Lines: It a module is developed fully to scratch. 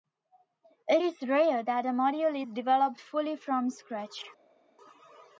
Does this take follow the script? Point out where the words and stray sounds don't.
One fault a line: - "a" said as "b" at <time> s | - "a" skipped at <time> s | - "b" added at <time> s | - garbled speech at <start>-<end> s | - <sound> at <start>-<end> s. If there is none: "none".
- "is rare that" added at 1.0 s
- "to" said as "from" at 3.3 s